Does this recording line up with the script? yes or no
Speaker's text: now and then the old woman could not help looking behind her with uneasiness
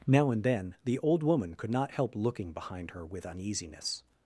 yes